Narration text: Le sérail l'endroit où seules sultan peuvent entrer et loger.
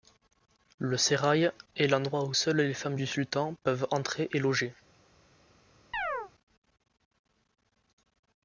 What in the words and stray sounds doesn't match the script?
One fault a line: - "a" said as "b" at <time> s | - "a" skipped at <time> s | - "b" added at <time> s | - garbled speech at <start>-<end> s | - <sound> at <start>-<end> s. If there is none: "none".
- "est" added at 1.8 s
- "les femmes du" added at 2.6 s
- chirp at 5.9-6.3 s